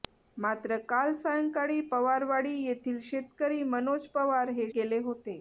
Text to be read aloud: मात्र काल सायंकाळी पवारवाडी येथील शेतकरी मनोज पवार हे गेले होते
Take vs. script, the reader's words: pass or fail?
pass